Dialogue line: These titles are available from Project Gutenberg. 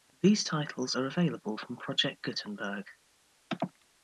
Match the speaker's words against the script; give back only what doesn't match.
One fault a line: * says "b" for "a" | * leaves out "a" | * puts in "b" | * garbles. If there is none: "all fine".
all fine